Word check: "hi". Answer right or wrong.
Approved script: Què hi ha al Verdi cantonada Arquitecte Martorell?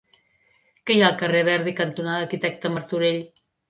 right